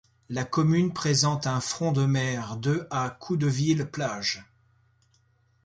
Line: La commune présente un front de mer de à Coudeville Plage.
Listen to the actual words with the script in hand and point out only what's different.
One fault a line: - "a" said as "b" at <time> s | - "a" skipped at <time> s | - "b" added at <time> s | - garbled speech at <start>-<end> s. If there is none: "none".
none